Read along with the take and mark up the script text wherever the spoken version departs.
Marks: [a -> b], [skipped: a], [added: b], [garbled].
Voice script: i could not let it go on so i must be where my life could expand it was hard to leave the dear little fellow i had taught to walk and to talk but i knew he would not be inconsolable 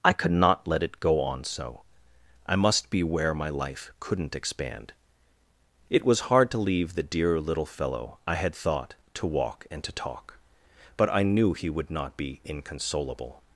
i could not let it go on so i must be where my life [could -> couldn't] expand it was hard to leave the dear little fellow i had [taught -> thought] to walk and to talk but i knew he would not be inconsolable